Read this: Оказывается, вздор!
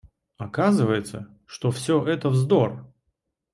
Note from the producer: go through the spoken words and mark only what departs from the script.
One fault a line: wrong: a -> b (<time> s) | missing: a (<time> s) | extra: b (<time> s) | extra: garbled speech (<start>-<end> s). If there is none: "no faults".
extra: что все это (1.4 s)